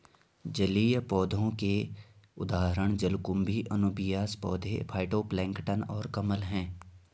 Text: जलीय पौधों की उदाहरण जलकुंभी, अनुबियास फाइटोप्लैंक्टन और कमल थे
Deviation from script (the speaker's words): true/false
true